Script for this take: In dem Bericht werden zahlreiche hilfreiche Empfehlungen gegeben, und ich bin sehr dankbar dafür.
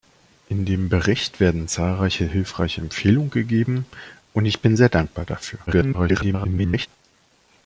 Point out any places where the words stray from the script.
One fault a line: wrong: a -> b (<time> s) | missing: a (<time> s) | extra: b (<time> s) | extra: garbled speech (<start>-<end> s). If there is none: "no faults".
extra: garbled speech (5.7-6.9 s)